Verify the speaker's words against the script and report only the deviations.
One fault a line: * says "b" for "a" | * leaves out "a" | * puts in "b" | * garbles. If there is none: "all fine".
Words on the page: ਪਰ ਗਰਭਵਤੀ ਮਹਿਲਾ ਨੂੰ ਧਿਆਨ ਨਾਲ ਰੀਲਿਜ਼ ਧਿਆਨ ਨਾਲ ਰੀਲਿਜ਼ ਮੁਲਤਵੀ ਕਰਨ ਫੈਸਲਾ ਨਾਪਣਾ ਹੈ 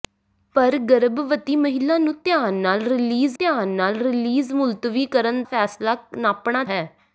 all fine